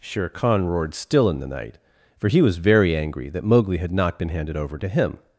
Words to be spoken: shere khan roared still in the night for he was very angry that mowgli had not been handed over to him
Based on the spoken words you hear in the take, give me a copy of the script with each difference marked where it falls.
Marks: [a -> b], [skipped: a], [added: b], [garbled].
shere khan roared still in the night for he was very angry that mowgli had not been handed over to him